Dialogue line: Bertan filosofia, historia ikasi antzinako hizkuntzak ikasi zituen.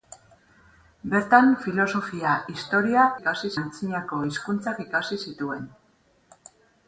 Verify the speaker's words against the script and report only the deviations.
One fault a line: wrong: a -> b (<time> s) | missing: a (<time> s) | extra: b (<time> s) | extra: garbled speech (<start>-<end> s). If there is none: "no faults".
no faults